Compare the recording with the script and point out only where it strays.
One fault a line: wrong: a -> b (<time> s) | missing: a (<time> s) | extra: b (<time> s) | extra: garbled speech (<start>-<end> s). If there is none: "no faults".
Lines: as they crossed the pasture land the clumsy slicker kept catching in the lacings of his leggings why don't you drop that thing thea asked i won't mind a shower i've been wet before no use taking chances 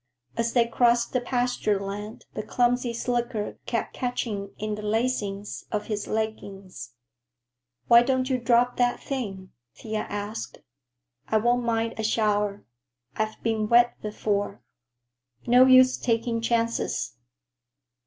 no faults